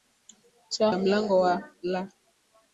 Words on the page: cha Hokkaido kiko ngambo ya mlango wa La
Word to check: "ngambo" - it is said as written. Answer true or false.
false